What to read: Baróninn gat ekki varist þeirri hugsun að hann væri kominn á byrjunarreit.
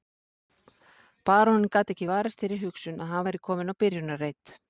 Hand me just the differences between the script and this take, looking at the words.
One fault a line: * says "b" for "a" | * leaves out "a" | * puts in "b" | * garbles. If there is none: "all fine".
all fine